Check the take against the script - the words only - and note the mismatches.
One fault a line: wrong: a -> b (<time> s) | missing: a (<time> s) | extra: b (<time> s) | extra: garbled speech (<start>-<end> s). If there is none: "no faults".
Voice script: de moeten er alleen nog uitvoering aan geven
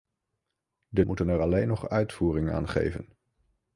no faults